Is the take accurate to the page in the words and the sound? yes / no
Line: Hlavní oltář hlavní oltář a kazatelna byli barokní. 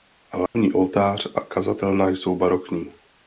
no